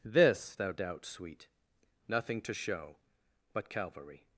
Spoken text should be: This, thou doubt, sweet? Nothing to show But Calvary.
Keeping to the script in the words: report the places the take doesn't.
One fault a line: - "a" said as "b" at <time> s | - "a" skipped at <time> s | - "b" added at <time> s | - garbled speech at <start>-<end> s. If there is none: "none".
none